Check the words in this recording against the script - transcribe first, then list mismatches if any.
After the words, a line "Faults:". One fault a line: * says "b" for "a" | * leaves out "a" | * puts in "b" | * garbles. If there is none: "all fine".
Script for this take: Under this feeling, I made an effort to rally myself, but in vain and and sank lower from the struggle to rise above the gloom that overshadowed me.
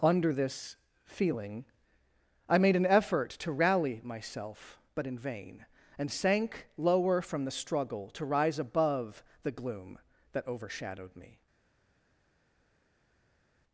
Under this feeling, I made an effort to rally myself, but in vain and sank lower from the struggle to rise above the gloom that overshadowed me.
Faults:
* leaves out "and"